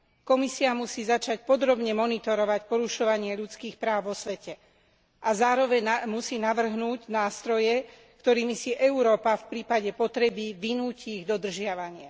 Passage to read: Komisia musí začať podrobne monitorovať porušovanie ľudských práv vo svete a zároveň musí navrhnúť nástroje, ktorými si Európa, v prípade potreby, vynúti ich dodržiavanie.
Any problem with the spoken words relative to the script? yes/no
no